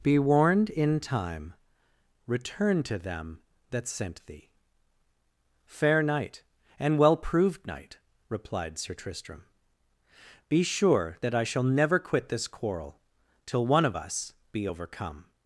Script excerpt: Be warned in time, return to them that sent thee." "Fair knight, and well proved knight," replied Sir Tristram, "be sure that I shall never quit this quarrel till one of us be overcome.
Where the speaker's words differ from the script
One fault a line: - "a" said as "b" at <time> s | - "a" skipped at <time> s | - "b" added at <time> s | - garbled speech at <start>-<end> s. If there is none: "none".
none